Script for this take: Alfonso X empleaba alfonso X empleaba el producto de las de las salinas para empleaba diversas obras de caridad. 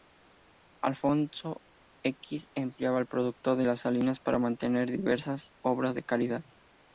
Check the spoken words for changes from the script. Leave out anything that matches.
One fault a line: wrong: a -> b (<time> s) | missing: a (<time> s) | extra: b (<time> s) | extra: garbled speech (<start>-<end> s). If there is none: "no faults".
missing: alfonso X empleaba (3.0 s)
missing: de las (3.8 s)
wrong: empleaba -> mantener (4.4 s)